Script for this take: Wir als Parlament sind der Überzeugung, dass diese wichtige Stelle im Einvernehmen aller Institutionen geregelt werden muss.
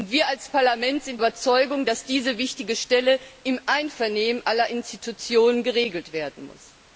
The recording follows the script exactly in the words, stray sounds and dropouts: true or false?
false